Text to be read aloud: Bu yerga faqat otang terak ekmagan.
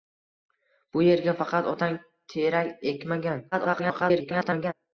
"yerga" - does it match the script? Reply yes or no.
yes